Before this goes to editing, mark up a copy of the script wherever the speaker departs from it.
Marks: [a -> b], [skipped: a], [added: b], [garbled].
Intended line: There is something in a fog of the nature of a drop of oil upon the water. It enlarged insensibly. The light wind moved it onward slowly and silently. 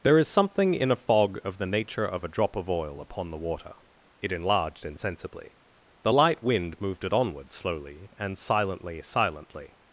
There is something in a fog of the nature of a drop of oil upon the water. It enlarged insensibly. The light wind moved it onward slowly and silently. [added: silently]